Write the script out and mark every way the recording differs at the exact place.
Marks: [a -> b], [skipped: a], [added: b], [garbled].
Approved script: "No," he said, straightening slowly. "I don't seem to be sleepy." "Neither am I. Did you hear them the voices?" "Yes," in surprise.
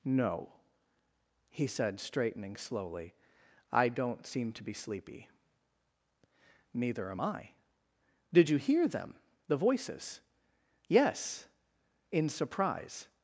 "No," he said, straightening slowly. "I don't seem to be sleepy." "Neither am I. Did you hear them the voices?" "Yes," in surprise.